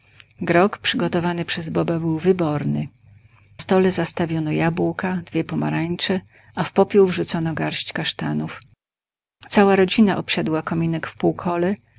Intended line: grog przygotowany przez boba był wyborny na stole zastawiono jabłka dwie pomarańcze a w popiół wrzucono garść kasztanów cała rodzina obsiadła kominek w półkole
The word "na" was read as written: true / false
false